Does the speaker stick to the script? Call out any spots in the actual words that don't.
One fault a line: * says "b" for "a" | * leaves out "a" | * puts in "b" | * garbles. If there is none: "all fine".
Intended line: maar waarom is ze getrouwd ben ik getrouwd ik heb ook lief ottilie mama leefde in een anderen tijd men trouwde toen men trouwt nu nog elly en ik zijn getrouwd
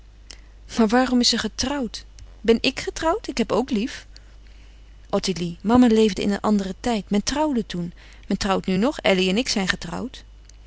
all fine